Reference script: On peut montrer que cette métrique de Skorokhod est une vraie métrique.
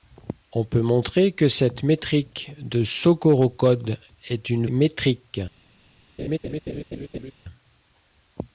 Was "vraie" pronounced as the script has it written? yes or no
no